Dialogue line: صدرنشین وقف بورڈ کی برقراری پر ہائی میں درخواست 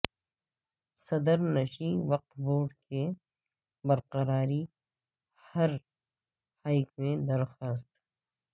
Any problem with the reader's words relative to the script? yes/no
no